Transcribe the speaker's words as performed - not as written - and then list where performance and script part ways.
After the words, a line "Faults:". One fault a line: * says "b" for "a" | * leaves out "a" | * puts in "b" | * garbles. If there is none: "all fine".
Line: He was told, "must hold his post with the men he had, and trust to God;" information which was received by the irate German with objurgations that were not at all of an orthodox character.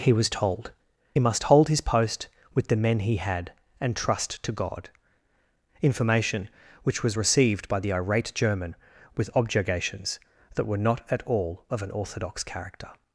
He was told, "must hold his post with the men he had, and trust to God;" information which was received by the irate German with objurgations that were not at all of an orthodox character.
Faults:
all fine